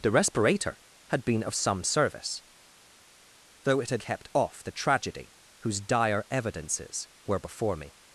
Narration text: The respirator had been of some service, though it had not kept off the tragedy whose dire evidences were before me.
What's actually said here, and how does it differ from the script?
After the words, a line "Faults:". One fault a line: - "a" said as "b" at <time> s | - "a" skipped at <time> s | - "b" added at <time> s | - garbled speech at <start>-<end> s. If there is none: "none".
The respirator had been of some service, though it had kept off the tragedy whose dire evidences were before me.
Faults:
- "not" skipped at 4.0 s